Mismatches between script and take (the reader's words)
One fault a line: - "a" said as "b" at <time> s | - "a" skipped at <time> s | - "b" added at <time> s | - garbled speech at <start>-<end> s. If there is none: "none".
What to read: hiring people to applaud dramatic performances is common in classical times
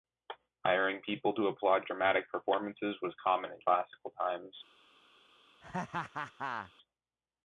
- "is" said as "was" at 3.0 s